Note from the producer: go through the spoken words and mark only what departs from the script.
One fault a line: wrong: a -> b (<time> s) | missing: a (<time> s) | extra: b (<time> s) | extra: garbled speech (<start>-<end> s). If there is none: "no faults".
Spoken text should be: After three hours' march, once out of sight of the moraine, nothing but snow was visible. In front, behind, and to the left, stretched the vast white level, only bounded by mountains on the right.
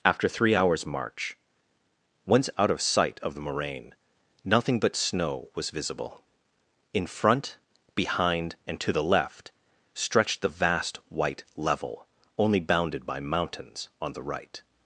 no faults